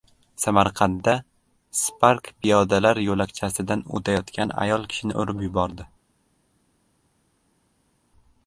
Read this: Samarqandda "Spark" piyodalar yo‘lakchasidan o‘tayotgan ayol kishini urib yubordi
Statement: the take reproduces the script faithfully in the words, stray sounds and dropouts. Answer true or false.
true